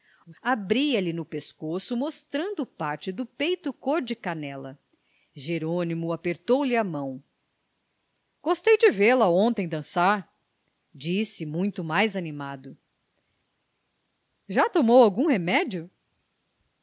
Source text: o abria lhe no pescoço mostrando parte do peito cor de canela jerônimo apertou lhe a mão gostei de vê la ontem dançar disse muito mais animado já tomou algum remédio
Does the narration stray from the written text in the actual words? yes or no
no